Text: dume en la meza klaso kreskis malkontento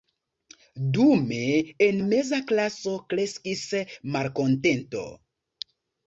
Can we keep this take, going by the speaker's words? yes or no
no